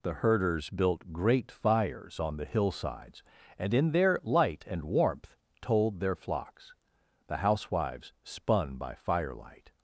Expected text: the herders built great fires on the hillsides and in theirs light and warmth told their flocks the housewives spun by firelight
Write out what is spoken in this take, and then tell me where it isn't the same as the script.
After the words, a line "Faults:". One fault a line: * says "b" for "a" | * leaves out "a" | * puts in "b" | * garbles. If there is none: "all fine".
the herders built great fires on the hillsides and in their light and warmth told their flocks the housewives spun by firelight
Faults:
* says "their" for "theirs"